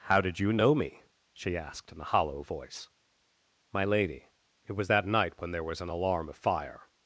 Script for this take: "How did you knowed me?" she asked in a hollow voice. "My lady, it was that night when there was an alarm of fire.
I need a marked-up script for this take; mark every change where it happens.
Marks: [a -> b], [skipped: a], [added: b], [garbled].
"How did you [knowed -> know] me?" she asked in a hollow voice. "My lady, it was that night when there was an alarm of fire.